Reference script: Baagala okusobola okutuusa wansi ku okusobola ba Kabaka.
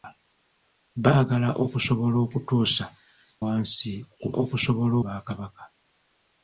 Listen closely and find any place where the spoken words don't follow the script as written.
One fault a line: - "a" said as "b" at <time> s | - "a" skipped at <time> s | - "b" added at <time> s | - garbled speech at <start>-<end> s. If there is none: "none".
none